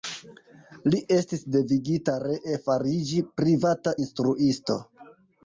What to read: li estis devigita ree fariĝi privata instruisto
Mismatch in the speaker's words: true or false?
false